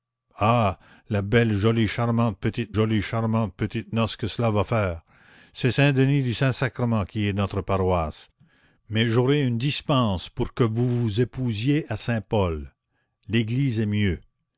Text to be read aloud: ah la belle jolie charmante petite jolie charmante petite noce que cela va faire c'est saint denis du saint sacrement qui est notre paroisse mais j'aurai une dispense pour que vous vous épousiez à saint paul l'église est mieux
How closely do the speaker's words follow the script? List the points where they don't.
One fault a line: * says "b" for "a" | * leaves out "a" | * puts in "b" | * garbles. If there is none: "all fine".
all fine